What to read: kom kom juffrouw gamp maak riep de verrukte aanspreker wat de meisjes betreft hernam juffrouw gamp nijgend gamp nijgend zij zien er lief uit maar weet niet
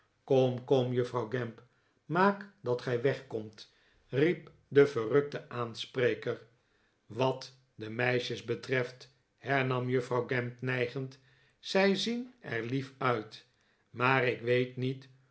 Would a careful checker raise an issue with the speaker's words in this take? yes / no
yes